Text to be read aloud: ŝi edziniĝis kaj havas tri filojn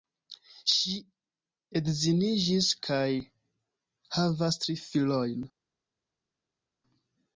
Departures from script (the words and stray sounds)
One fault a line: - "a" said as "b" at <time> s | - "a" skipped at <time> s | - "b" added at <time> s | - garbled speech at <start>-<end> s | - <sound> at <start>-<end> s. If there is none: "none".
none